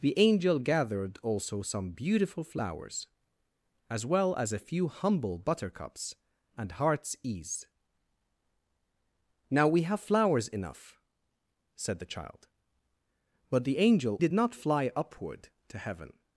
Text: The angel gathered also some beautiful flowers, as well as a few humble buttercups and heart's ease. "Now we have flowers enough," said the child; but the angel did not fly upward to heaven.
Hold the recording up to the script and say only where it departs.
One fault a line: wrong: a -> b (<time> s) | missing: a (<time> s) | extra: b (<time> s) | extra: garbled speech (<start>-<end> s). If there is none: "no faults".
no faults